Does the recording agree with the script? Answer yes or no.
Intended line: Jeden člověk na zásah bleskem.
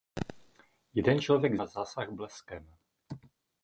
yes